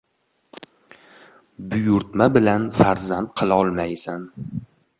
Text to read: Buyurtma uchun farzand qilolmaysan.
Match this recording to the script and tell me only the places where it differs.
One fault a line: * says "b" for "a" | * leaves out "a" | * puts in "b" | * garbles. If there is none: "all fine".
* says "bilan" for "uchun"